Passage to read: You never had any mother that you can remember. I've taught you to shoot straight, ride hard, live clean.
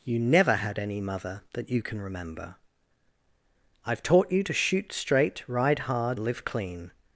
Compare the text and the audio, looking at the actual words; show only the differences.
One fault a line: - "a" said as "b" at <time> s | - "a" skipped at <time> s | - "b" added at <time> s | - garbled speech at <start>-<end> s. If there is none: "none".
none